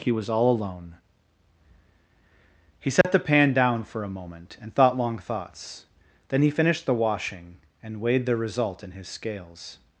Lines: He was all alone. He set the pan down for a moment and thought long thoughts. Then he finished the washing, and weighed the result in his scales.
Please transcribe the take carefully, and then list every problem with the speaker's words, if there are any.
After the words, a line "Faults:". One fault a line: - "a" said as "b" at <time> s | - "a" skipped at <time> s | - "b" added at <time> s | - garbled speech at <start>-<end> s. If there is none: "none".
He was all alone. He set the pan down for a moment and thought long thoughts. Then he finished the washing, and weighed the result in his scales.
Faults:
none